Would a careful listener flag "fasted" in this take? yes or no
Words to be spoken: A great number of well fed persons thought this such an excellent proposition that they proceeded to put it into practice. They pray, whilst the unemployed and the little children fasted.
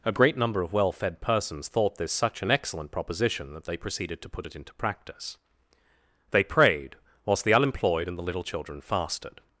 no